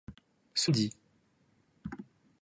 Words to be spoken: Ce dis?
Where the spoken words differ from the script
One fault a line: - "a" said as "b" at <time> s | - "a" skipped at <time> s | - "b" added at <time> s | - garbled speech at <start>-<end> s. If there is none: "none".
none